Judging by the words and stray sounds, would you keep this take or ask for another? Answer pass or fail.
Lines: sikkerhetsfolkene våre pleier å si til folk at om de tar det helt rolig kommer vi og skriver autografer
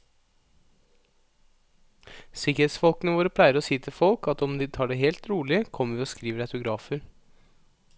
pass